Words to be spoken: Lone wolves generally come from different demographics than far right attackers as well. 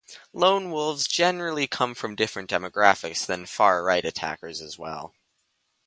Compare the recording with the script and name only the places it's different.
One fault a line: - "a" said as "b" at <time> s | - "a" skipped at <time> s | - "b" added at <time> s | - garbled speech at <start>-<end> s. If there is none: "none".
none